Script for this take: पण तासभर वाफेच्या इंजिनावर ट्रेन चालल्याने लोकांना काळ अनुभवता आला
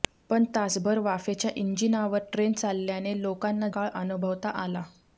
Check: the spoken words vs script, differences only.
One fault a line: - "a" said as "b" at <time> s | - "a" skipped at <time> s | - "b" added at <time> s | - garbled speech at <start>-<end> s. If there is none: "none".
none